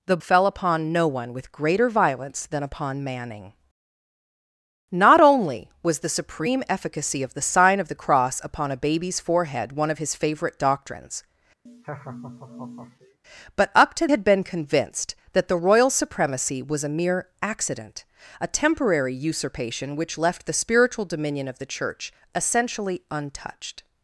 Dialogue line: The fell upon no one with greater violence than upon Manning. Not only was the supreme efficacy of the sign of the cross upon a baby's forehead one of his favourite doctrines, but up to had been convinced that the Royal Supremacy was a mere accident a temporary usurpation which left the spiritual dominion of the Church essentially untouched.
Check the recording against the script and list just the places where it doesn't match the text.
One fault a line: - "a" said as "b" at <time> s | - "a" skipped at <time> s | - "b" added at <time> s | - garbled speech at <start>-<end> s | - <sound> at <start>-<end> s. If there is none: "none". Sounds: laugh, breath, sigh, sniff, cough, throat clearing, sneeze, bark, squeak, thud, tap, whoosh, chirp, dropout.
- laugh at 11.7-13.2 s